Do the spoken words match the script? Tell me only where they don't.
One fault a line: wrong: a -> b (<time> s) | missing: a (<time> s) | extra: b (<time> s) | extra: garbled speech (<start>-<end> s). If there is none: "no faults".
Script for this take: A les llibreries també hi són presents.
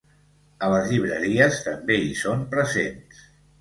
no faults